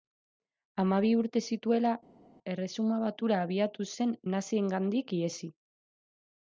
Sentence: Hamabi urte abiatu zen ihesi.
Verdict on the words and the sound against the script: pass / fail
fail